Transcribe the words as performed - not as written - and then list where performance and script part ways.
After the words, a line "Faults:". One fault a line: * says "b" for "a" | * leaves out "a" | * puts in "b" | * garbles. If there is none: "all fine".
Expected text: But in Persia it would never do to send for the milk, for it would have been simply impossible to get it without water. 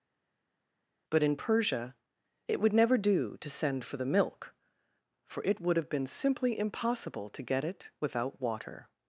But in Persia it would never do to send for the milk, for it would have been simply impossible to get it without water.
Faults:
all fine